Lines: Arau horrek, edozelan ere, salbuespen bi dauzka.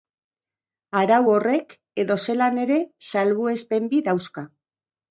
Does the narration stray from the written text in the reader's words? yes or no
no